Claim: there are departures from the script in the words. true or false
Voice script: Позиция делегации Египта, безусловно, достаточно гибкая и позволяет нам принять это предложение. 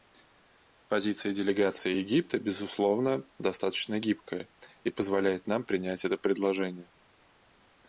false